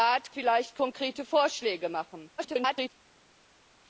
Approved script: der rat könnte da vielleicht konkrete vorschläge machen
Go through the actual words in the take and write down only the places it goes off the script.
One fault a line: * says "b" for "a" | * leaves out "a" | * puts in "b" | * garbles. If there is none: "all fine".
* leaves out "könnte da"
* garbles